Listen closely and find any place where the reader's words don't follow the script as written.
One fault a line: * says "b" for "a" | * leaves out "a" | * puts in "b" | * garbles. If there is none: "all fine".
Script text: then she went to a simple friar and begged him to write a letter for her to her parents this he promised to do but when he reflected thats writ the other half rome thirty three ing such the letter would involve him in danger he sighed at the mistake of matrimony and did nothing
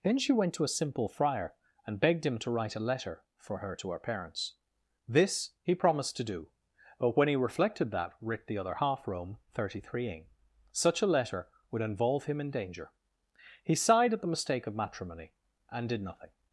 * says "that" for "thats"
* says "a" for "the"